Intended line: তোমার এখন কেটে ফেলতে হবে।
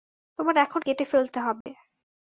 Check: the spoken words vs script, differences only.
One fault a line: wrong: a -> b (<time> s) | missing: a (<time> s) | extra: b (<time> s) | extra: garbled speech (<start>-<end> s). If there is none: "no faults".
no faults